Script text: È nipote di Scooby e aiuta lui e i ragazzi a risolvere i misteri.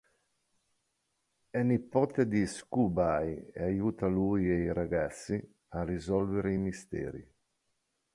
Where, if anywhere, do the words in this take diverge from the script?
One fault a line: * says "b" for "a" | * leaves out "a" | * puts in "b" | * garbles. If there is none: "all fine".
all fine